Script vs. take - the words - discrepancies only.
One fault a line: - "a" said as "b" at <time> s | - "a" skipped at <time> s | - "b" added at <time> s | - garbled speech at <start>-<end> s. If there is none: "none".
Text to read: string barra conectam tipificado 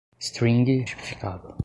- "barra conectam" skipped at 0.8 s